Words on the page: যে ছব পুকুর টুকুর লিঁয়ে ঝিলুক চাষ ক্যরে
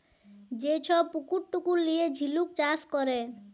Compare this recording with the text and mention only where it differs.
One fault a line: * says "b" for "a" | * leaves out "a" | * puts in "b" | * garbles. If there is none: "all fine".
all fine